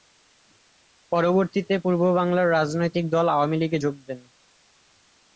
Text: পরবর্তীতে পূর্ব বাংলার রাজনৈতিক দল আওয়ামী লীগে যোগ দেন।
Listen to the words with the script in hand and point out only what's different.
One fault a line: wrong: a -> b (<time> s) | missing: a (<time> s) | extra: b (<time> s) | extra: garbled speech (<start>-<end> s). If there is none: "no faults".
no faults